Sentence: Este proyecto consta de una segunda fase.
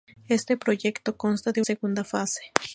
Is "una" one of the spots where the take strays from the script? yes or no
yes